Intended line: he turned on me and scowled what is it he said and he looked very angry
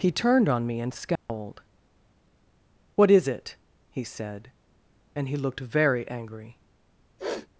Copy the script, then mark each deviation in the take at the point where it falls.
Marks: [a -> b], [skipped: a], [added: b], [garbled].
he turned on me and scowled what is it he said and he looked very angry